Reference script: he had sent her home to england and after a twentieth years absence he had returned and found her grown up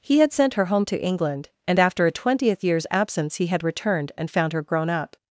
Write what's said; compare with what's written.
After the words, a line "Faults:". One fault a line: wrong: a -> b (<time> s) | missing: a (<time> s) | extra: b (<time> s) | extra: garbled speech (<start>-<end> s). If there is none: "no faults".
he had sent her home to england and after a twentieth years absence he had returned and found her grown up
Faults:
no faults